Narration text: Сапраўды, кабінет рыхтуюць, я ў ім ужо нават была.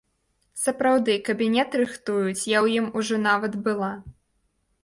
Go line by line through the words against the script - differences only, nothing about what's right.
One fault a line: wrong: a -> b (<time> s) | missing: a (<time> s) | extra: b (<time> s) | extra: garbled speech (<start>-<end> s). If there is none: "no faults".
no faults